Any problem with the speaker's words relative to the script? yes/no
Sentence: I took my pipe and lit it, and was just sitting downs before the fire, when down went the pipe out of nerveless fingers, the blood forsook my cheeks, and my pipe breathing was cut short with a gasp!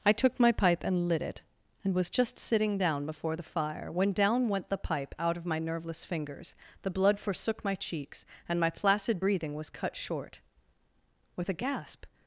yes